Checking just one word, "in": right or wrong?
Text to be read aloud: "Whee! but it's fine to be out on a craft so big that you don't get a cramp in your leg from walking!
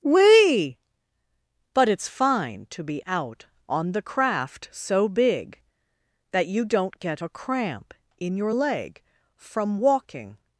right